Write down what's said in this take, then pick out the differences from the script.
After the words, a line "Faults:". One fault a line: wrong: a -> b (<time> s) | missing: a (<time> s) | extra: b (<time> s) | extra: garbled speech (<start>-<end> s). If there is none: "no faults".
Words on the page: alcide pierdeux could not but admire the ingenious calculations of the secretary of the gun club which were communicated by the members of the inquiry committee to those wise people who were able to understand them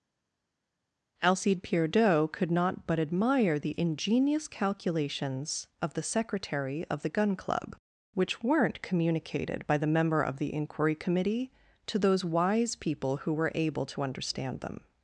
alcide pierdeux could not but admire the ingenious calculations of the secretary of the gun club which weren't communicated by the member of the inquiry committee to those wise people who were able to understand them
Faults:
wrong: were -> weren't (8.4 s)
wrong: members -> member (9.9 s)